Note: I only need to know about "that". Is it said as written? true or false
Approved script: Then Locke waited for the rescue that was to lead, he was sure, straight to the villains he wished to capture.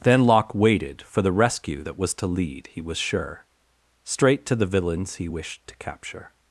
true